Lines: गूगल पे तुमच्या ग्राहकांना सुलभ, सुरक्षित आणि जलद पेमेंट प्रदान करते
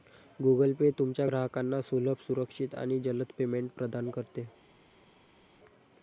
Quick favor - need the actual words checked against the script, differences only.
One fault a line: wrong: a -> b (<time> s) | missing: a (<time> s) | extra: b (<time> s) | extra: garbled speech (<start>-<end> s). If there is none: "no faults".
no faults